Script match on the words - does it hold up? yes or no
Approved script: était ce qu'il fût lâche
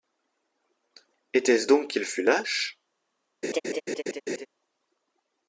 no